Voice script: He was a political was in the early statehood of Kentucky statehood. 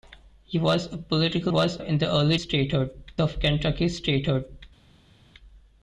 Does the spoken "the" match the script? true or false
true